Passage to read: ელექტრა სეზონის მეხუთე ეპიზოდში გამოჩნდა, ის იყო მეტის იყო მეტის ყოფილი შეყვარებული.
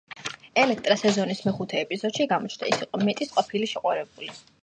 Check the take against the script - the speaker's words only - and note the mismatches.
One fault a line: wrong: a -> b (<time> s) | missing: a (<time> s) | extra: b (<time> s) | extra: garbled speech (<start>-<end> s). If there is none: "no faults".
missing: იყო მეტის (3.3 s)